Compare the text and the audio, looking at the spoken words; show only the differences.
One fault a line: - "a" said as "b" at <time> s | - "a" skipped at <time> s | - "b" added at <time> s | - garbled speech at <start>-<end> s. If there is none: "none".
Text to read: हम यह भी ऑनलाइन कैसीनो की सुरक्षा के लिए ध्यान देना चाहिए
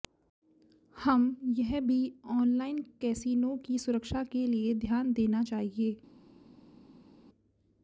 none